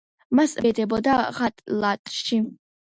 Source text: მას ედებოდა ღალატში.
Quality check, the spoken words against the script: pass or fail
pass